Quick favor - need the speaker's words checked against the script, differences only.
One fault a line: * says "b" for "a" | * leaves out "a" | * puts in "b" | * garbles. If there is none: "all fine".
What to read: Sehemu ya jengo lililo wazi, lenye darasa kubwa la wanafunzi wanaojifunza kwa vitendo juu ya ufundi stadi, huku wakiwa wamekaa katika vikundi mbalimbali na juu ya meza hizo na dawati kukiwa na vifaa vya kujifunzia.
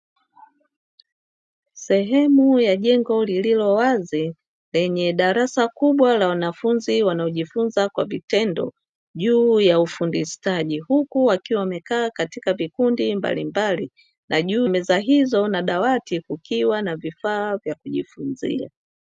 * leaves out "ya"